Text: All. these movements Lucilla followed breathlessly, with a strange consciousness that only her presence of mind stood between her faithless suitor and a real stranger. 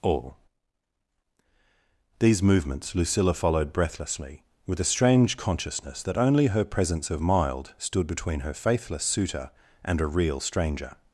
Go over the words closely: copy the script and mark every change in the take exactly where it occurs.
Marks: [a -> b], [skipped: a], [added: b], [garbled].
All. these movements Lucilla followed breathlessly, with a strange consciousness that only her presence of [mind -> mild] stood between her faithless suitor and a real stranger.